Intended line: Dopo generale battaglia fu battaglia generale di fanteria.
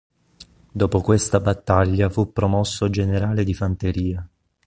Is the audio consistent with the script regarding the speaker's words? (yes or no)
no